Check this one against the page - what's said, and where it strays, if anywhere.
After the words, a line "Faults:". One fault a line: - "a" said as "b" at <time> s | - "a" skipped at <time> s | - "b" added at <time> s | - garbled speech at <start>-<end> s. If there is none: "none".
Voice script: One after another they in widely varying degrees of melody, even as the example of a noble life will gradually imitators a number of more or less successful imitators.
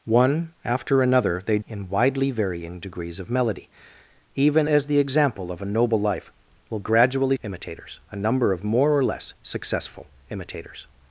One after another they in widely varying degrees of melody, even as the example of a noble life will gradually imitators a number of more or less successful imitators.
Faults:
none